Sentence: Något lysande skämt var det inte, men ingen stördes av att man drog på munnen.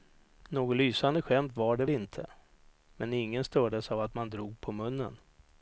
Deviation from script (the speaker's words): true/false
false